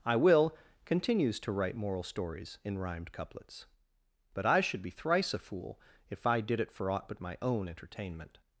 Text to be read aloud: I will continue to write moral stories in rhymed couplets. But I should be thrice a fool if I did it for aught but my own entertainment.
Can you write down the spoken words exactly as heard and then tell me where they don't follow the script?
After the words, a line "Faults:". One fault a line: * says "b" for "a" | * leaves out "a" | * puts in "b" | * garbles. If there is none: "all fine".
I will continues to write moral stories in rhymed couplets. But I should be thrice a fool if I did it for aught but my own entertainment.
Faults:
* says "continues" for "continue"